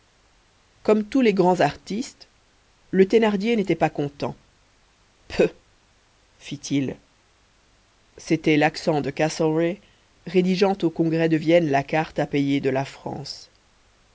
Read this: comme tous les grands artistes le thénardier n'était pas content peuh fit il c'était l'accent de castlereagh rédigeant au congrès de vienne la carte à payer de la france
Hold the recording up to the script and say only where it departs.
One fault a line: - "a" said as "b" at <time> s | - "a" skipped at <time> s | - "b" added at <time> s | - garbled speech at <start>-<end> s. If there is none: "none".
none